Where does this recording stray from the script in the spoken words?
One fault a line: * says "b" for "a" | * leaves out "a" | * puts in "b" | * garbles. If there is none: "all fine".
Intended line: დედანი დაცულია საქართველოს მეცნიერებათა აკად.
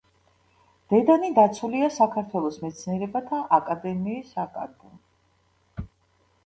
* puts in "აკადემიის"